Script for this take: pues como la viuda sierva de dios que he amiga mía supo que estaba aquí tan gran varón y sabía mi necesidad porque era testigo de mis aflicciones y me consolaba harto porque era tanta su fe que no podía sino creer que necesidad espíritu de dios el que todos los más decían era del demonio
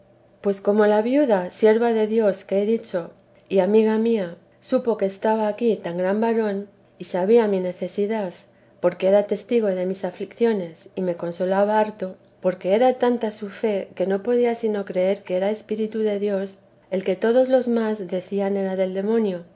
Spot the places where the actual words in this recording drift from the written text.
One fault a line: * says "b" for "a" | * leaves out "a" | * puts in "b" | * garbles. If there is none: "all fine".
* puts in "dicho y"
* says "era" for "necesidad"